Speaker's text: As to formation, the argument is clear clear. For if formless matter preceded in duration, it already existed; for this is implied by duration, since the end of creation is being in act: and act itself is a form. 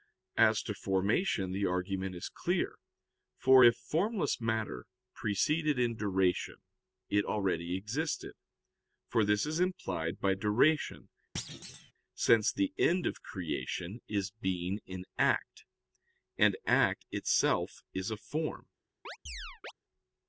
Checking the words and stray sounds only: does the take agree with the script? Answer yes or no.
no